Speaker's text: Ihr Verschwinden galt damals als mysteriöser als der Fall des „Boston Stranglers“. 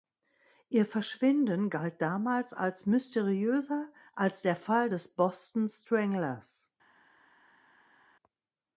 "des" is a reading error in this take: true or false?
false